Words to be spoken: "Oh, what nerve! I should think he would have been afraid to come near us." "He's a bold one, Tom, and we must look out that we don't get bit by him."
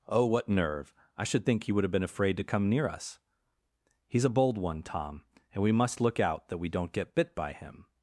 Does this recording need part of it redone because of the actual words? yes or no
no